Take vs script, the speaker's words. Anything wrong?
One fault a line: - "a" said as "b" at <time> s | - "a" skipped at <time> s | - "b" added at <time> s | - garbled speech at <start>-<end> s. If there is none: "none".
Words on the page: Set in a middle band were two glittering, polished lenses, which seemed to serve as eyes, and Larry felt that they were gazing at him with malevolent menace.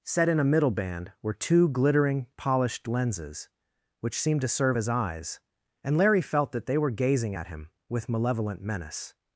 none